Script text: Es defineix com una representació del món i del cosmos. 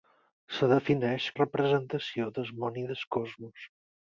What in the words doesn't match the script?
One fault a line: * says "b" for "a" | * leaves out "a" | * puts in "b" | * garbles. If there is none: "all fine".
* leaves out "com una"